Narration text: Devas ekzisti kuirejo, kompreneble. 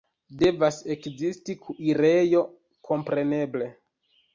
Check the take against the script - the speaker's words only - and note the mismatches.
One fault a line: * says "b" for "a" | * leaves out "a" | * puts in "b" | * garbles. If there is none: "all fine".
all fine